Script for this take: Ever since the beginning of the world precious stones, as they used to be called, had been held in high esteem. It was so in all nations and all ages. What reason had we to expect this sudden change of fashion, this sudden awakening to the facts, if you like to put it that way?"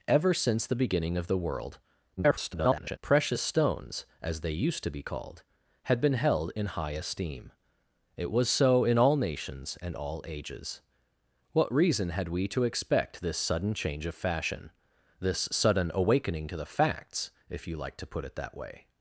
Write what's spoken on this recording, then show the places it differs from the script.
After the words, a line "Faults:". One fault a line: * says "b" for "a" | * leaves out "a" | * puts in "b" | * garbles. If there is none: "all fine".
Ever since the beginning of the world [garbled] precious stones, as they used to be called, had been held in high esteem. It was so in all nations and all ages. What reason had we to expect this sudden change of fashion, this sudden awakening to the facts, if you like to put it that way?"
Faults:
* garbles